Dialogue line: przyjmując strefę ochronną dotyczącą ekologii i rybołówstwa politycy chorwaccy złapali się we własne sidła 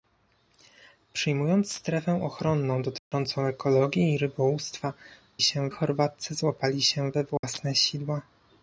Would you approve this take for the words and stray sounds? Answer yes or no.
no